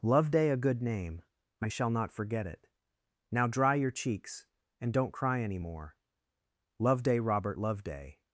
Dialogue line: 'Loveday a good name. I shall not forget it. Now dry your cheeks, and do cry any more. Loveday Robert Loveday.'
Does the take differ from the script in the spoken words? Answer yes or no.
yes